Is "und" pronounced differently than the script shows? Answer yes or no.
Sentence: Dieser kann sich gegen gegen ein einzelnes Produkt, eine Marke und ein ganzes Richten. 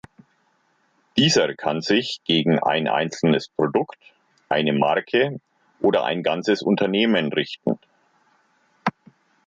yes